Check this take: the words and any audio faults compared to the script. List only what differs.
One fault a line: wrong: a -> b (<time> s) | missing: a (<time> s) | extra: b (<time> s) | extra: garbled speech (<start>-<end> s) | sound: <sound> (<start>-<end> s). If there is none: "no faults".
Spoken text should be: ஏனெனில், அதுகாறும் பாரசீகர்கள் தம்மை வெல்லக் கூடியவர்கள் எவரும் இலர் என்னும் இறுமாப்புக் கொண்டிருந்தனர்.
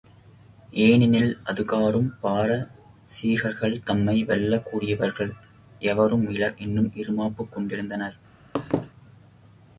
sound: laugh (8.5-8.9 s)